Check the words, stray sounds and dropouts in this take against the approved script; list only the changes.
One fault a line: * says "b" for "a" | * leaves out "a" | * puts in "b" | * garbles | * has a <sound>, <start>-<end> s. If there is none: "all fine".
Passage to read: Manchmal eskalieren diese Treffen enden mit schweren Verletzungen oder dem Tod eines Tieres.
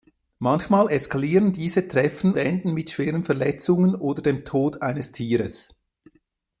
all fine